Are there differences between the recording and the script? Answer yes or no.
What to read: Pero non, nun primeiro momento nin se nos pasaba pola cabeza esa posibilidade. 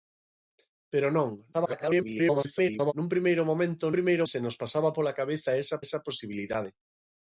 yes